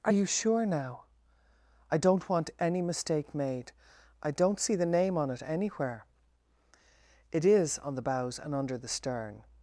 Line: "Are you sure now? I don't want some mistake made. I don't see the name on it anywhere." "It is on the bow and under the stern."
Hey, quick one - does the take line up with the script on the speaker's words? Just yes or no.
no